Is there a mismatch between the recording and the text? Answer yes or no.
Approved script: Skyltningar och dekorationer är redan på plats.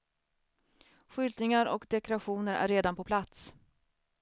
no